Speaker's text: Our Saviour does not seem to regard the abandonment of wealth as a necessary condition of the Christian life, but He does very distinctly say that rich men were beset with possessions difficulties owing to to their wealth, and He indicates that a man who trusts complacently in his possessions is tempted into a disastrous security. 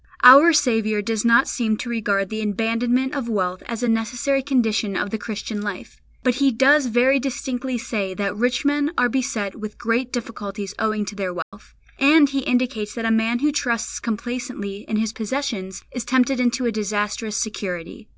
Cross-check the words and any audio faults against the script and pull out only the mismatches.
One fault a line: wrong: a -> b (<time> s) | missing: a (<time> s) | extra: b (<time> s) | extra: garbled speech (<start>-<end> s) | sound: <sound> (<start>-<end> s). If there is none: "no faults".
wrong: were -> are (9.0 s)
wrong: possessions -> great (9.8 s)
missing: to (11.2 s)
sound: dropout (11.4-11.5 s)